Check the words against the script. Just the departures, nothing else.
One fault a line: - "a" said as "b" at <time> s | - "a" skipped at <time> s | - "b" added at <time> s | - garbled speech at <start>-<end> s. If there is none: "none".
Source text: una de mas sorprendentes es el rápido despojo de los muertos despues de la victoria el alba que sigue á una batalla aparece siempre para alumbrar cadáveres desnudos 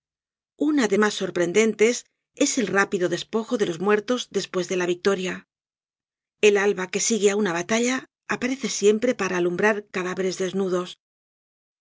none